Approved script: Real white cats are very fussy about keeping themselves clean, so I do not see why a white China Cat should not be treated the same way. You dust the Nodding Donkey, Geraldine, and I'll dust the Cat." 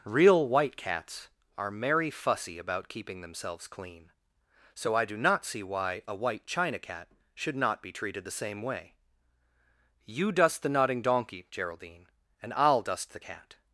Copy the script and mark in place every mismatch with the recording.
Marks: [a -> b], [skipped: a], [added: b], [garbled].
Real white cats are [very -> merry] fussy about keeping themselves clean, so I do not see why a white China Cat should not be treated the same way. You dust the Nodding Donkey, Geraldine, and I'll dust the Cat."